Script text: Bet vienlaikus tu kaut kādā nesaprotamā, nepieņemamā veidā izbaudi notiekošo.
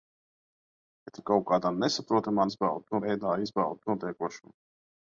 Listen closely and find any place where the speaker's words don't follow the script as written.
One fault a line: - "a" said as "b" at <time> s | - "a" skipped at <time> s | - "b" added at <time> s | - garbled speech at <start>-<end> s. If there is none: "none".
- "vienlaikus" skipped at 1.2 s
- "nepieņemamā" said as "izbaudi" at 2.5 s